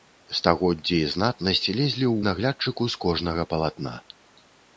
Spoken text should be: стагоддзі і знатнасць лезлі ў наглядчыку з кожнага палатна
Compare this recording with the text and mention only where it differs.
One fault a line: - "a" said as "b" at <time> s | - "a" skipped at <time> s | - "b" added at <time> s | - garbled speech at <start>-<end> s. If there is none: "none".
none